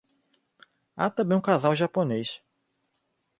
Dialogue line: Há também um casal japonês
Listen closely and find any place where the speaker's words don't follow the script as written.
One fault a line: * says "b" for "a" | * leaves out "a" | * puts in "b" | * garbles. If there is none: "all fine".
all fine